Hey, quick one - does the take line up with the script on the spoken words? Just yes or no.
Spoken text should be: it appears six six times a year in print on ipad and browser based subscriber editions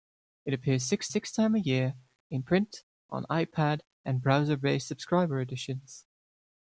yes